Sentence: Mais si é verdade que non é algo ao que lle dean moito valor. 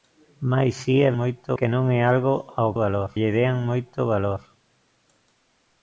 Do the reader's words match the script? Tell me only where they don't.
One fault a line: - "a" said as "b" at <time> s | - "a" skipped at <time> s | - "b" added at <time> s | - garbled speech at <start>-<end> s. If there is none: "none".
- "verdade" said as "moito" at 1.2 s
- "que" said as "valor" at 2.8 s